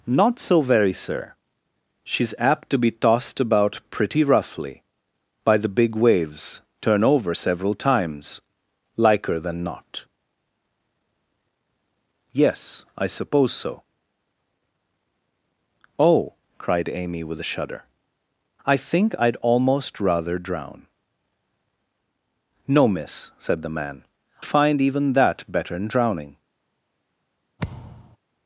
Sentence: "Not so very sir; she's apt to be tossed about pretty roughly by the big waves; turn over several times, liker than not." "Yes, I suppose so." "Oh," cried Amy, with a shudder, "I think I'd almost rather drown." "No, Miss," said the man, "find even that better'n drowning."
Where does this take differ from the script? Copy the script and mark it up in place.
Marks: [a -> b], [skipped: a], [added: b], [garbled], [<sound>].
"Not so very sir; she's apt to be tossed about pretty roughly by the big waves; turn over several times, liker than not." "Yes, I suppose so." "Oh," cried Amy, with a shudder, "I think I'd almost rather drown." "No, Miss," said the man, "find even that better'n drowning." [thud]